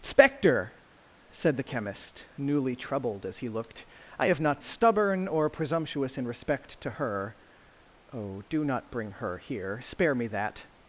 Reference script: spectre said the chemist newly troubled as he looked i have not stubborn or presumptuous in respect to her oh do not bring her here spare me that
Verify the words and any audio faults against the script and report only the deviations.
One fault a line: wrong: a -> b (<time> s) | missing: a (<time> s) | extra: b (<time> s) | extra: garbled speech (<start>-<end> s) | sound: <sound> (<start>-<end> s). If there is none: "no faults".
no faults